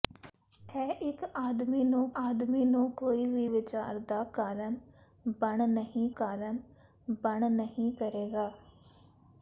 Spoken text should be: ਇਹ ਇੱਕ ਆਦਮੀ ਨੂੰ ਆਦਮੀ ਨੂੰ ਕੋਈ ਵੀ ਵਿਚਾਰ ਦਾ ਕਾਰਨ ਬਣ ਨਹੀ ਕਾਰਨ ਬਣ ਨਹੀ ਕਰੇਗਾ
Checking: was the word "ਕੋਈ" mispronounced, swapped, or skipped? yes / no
no